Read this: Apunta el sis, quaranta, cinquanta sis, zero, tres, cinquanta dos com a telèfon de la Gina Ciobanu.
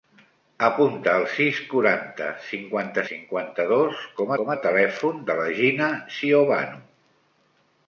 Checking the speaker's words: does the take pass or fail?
fail